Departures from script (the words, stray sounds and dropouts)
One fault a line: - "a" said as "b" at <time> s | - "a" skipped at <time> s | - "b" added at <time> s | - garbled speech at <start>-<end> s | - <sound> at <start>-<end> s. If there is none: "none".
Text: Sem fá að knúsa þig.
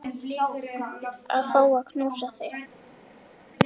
- "Sem" said as "Að" at 1.4 s